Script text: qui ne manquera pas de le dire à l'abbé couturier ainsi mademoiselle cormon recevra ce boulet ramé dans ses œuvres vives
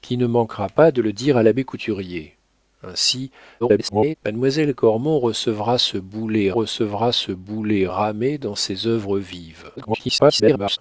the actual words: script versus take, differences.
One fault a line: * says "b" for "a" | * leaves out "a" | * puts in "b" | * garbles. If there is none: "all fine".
* garbles
* puts in "recevra ce boulet"
* garbles